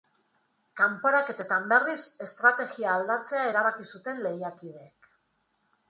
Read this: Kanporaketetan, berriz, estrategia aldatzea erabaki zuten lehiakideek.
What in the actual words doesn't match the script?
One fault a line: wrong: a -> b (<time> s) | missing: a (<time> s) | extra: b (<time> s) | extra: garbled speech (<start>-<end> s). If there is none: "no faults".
no faults